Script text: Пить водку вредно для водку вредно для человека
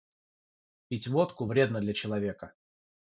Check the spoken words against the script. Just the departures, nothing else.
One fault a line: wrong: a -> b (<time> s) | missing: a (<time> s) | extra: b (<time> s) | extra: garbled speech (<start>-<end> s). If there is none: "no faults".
missing: водку вредно для (1.9 s)